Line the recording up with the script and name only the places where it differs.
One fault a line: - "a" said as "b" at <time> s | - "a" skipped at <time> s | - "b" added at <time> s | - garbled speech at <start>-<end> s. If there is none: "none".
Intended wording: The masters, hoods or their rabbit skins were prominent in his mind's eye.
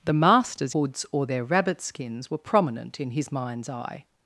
none